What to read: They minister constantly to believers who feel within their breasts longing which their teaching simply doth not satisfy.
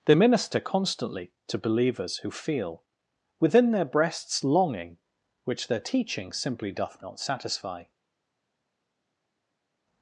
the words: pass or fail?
pass